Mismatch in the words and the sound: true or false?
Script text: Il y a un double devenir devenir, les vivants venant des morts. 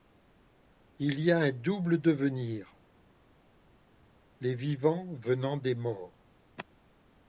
true